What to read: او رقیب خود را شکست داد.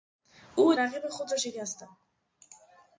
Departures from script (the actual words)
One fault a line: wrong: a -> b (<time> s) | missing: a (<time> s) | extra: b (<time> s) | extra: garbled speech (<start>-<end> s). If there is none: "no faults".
no faults